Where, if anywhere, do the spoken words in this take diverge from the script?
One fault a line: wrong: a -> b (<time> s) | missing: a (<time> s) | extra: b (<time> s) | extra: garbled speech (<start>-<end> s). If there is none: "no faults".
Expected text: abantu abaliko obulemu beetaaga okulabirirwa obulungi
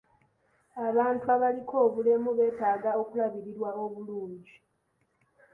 no faults